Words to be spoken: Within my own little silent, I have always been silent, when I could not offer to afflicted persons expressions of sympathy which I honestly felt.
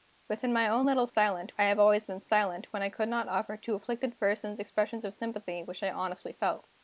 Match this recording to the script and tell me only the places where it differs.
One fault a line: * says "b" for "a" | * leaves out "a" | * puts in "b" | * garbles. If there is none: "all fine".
all fine